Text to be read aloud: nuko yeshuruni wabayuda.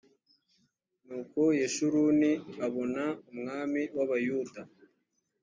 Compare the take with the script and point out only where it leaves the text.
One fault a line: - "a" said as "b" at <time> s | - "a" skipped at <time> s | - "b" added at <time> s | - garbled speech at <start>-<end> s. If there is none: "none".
- "abona umwami" added at 2.6 s